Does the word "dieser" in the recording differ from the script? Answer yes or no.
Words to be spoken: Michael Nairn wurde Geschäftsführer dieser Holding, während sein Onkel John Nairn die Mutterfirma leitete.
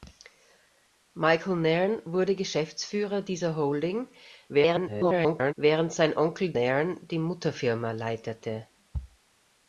no